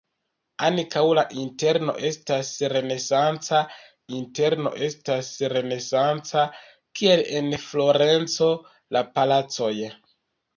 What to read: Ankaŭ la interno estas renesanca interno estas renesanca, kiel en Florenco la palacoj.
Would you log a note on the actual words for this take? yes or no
no